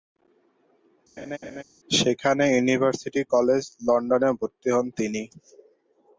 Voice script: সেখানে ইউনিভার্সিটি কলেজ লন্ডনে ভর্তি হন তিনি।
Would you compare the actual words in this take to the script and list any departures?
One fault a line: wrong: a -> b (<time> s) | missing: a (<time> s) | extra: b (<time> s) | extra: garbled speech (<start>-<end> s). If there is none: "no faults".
no faults